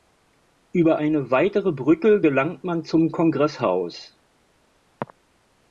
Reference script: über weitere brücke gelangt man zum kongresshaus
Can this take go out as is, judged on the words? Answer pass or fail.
fail